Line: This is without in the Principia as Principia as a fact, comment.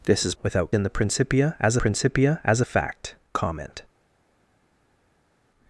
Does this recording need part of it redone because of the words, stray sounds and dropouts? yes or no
no